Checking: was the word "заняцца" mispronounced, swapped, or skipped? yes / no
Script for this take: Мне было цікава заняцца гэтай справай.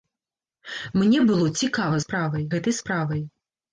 yes